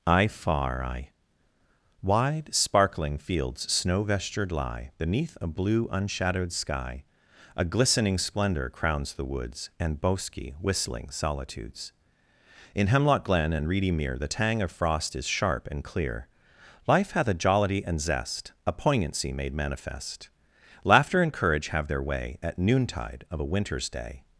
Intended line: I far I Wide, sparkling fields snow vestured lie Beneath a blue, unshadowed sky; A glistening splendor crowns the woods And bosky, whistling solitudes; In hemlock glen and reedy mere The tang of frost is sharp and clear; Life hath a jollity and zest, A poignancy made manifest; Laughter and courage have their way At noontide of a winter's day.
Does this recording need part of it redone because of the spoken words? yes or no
no